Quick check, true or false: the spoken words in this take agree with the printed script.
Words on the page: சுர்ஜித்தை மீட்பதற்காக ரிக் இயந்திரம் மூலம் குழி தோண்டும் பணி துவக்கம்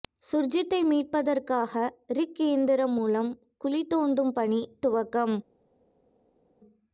true